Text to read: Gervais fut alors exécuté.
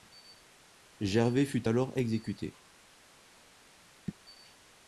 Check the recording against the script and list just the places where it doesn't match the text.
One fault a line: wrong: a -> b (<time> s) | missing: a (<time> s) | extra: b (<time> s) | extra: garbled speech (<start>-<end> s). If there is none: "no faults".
no faults